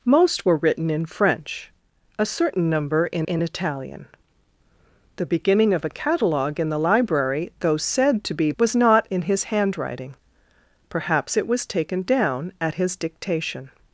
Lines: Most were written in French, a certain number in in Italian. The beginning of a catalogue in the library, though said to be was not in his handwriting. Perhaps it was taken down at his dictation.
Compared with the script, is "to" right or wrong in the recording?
right